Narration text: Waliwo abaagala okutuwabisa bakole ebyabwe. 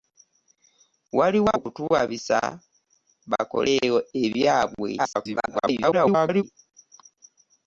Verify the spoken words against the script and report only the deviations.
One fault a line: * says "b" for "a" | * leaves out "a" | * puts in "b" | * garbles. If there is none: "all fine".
* leaves out "abaagala"
* garbles